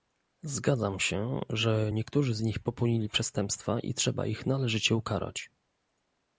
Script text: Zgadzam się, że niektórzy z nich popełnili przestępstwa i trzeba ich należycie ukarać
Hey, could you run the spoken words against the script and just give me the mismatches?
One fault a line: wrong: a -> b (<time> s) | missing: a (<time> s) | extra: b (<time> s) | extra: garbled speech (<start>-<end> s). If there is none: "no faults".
no faults